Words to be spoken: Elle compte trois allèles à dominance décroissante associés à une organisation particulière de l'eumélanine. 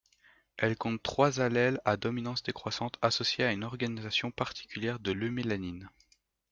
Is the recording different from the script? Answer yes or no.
no